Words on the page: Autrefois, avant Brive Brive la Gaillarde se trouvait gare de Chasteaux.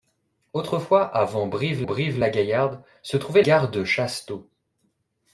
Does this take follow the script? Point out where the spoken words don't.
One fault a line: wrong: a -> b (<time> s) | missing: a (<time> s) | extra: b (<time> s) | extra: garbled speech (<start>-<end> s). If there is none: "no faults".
no faults